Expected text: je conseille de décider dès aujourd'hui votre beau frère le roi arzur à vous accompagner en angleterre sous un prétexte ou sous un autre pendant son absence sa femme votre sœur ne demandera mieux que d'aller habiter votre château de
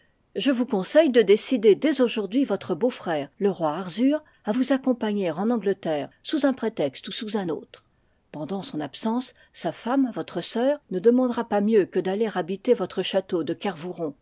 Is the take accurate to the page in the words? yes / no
no